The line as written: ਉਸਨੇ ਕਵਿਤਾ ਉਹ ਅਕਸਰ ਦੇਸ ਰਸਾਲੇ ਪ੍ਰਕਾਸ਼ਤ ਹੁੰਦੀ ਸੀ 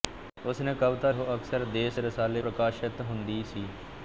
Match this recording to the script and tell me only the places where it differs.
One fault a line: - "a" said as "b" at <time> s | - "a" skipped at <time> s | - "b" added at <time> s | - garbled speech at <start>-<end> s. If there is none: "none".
none